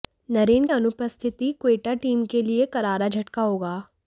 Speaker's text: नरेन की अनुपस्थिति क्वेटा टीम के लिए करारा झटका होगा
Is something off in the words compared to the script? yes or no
yes